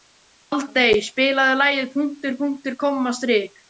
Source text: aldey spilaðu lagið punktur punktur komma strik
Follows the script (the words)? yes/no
yes